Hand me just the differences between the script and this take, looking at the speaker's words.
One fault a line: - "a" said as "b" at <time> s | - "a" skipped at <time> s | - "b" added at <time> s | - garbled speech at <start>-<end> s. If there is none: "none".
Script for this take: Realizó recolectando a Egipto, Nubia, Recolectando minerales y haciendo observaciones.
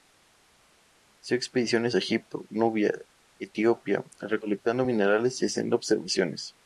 - "recolectando" said as "expediciones" at 1.4 s
- "Etiopía" added at 3.4 s